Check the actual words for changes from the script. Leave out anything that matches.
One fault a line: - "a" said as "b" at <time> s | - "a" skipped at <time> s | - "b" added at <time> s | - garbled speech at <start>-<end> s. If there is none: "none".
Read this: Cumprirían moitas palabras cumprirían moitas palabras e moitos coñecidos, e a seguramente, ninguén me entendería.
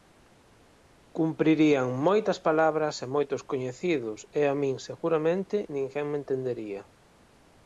- "cumprirían moitas palabras" skipped at 3.0 s
- "min" added at 4.6 s